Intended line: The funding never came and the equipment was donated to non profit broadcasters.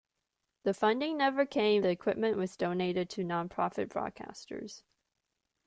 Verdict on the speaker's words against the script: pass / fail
fail